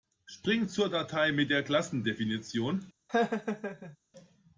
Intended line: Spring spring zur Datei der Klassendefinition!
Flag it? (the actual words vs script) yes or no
yes